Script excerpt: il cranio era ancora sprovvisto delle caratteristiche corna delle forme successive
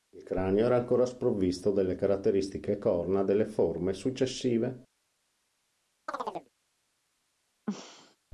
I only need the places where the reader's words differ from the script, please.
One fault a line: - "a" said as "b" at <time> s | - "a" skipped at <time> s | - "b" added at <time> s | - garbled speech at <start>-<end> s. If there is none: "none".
none